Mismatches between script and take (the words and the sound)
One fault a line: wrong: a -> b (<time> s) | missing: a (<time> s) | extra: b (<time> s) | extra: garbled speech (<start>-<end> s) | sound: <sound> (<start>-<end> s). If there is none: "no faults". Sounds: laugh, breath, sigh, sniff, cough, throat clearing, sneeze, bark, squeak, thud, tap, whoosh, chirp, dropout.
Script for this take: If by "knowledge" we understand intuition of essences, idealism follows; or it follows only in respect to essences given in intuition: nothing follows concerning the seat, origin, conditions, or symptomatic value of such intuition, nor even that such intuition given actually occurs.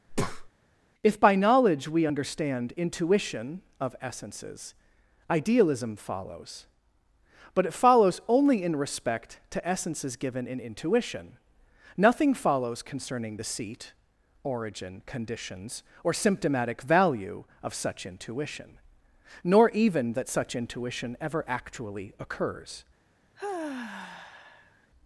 sound: breath (0.1-0.5 s)
wrong: or -> but (7.5 s)
wrong: given -> ever (21.2 s)
sound: sigh (23.4-24.9 s)